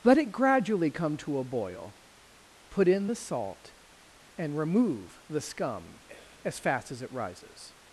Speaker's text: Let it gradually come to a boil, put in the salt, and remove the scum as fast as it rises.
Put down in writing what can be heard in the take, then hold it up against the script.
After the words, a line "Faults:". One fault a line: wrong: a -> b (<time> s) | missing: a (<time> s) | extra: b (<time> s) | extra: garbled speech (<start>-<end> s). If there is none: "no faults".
Let it gradually come to a boil, put in the salt, and remove the scum as fast as it rises.
Faults:
no faults